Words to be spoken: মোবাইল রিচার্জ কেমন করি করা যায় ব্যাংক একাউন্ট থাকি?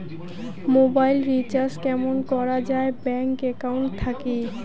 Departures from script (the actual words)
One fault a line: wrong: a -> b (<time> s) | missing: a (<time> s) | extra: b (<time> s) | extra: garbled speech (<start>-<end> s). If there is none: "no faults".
missing: করি (2.1 s)